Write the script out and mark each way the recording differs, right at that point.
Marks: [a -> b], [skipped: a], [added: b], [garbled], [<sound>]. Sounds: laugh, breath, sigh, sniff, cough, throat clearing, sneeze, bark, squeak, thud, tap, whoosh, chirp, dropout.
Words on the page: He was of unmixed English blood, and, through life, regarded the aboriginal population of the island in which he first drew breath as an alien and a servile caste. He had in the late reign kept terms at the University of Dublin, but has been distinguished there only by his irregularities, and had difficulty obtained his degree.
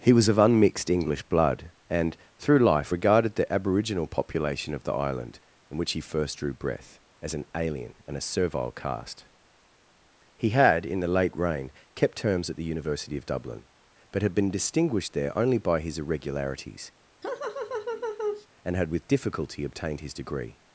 He was of unmixed English blood, and, through life, regarded the aboriginal population of the island in which he first drew breath as an alien and a servile caste. He had in the late reign kept terms at the University of Dublin, but [has -> had] been distinguished there only by his irregularities, [laugh] and had [added: with] difficulty obtained his degree.